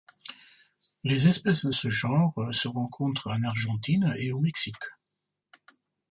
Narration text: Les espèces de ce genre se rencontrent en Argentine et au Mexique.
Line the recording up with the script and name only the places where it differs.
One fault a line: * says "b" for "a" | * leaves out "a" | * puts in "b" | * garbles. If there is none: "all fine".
all fine